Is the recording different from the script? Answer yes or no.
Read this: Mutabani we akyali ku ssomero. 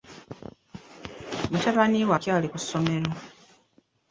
no